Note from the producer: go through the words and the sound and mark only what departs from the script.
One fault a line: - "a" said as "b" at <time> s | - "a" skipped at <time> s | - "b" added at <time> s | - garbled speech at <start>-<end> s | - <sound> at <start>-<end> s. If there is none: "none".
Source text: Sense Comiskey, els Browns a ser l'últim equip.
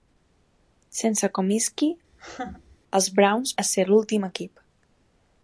- laugh at 2.1-2.8 s